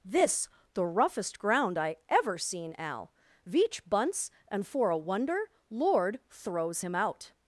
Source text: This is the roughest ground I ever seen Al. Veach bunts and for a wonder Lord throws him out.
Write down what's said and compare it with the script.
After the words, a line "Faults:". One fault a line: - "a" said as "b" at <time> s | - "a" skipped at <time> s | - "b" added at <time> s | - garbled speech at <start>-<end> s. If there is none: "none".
This the roughest ground I ever seen Al. Veach bunts and for a wonder Lord throws him out.
Faults:
- "is" skipped at 0.5 s